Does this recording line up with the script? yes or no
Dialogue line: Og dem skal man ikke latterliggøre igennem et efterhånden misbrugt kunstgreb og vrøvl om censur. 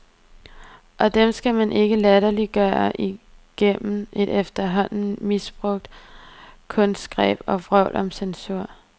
yes